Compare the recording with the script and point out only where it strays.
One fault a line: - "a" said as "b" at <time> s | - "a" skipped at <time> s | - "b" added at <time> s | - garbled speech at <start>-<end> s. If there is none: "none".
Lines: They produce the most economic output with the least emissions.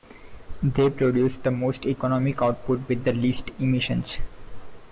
none